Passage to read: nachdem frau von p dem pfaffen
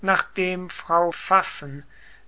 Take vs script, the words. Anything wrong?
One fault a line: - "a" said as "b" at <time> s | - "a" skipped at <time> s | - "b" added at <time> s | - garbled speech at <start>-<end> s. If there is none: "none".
- "von p dem" skipped at 1.1 s